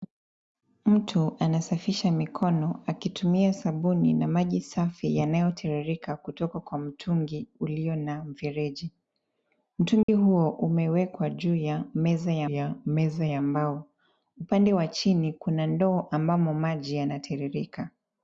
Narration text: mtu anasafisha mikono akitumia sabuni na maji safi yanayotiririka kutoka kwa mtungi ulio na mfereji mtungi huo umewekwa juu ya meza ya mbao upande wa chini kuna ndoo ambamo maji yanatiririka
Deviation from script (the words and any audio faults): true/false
true